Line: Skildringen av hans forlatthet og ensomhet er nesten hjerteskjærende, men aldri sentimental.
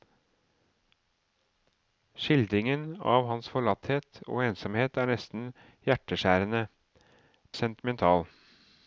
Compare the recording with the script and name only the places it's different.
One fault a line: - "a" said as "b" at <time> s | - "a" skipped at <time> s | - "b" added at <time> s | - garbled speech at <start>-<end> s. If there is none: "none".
- "men aldri" skipped at 6.7 s